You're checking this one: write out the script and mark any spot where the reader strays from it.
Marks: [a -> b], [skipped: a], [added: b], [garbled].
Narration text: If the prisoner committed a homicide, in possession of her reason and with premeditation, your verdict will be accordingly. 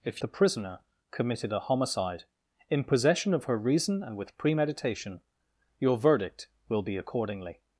If the prisoner committed a homicide, in possession of her reason and with premeditation, your verdict will be accordingly.